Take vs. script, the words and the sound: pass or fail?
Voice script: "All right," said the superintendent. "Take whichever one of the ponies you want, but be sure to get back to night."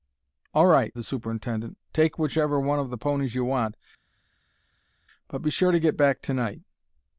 fail